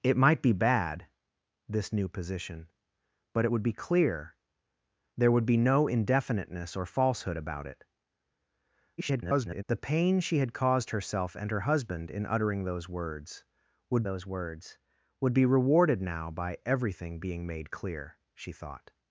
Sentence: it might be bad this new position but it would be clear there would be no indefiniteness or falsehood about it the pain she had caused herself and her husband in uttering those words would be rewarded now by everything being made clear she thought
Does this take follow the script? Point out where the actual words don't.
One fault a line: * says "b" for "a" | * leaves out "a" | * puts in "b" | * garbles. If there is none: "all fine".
* garbles
* puts in "those words would"